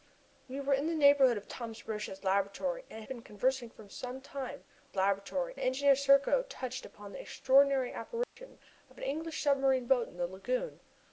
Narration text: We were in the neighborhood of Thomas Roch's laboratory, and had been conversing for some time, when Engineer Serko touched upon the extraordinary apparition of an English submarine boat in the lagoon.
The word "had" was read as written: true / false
false